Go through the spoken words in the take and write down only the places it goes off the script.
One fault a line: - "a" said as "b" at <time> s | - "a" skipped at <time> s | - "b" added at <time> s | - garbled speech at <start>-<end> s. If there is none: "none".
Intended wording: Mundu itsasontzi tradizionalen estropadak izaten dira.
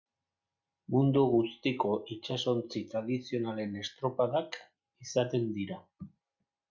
- "guztiko" added at 1.3 s